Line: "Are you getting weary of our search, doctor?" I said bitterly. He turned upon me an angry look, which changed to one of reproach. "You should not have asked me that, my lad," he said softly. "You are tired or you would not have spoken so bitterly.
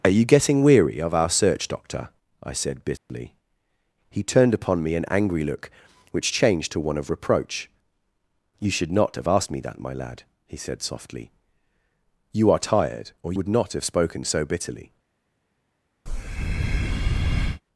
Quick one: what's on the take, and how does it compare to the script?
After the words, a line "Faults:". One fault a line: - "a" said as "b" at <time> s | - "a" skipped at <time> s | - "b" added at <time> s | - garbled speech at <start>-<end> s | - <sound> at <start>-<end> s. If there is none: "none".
"Are you getting weary of our search, doctor?" I said bitterly. He turned upon me an angry look, which changed to one of reproach. "You should not have asked me that, my lad," he said softly. "You are tired or would not have spoken so bitterly.
Faults:
- dropout at 3.0-3.1 s
- "you" skipped at 13.3 s
- breath at 16.1-17.6 s